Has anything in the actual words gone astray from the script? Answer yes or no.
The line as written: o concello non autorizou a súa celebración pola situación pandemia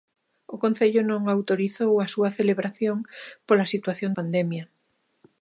no